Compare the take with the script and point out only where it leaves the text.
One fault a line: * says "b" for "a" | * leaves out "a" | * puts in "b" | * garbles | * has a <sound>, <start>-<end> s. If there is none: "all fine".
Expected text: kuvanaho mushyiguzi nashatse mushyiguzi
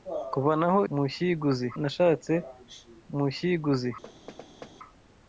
* has a thud, 4.0-4.8 s